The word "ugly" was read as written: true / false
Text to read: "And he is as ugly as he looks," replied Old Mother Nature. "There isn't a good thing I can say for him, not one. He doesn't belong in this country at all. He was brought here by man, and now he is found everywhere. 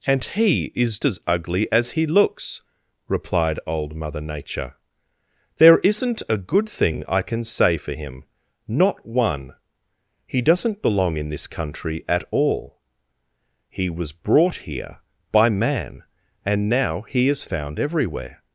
true